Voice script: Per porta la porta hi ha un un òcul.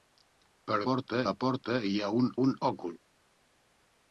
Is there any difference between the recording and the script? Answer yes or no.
no